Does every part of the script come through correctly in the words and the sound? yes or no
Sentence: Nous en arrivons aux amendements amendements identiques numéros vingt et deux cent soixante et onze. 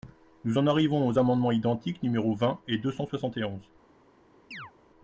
no